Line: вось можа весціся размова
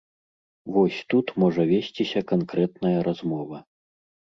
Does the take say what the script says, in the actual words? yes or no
no